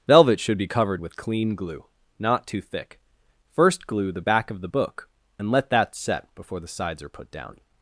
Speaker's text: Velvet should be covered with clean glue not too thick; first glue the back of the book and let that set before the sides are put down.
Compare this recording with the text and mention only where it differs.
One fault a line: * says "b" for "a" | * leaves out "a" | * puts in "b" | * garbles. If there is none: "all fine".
all fine